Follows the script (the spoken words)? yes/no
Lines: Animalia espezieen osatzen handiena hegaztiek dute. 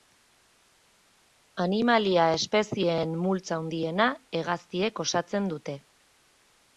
no